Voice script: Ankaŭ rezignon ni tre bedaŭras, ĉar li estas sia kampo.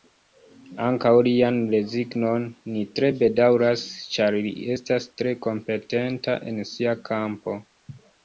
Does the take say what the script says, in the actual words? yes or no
no